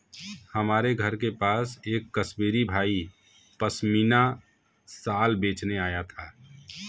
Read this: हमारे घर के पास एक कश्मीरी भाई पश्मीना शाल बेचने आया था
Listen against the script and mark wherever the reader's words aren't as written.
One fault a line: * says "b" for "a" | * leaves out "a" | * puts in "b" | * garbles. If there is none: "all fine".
all fine